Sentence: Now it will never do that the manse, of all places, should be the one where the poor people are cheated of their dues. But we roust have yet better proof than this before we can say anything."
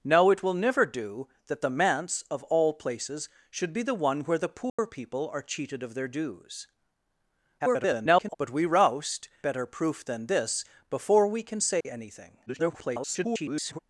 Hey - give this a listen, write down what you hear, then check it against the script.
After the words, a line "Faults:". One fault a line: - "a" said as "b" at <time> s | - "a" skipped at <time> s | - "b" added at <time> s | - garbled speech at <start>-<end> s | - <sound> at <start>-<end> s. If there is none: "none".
Now it will never do that the manse, of all places, should be the one where the poor people are cheated of their dues. [garbled] But we roust better proof than this before we can say anything." [garbled]
Faults:
- dropout at 4.7-4.8 s
- garbled speech at 7.6-8.4 s
- "have yet" skipped at 9.3 s
- dropout at 11.8-11.9 s
- garbled speech at 12.5-13.8 s